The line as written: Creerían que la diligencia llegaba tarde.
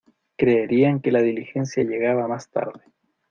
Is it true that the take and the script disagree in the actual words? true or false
true